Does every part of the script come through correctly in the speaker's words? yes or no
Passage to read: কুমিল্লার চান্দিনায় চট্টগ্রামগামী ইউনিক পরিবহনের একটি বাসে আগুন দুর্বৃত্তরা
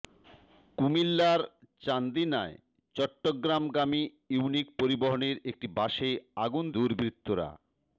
yes